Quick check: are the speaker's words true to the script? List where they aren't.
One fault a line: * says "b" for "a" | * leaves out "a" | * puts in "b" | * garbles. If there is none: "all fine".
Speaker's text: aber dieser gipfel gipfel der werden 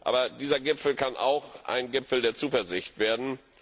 * puts in "kann auch ein"
* puts in "zuversicht"